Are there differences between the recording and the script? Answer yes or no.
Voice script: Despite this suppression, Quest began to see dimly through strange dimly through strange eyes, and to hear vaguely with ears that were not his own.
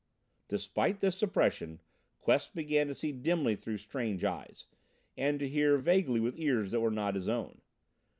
yes